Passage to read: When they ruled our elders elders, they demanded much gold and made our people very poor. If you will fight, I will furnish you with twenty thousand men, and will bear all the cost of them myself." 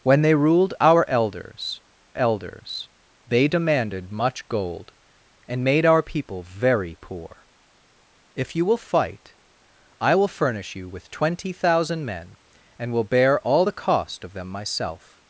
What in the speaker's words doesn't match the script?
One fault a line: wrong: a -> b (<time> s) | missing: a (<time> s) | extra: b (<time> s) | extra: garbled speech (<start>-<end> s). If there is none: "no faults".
no faults